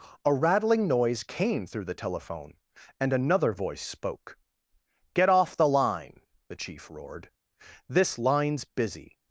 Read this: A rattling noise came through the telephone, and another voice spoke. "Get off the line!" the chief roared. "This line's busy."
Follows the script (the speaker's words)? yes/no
yes